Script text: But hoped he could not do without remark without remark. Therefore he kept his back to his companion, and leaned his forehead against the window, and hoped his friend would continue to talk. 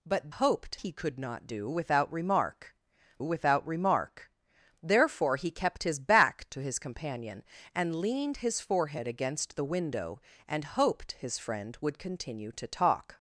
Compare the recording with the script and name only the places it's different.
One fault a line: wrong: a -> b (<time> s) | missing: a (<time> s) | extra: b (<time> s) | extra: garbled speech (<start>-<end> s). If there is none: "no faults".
no faults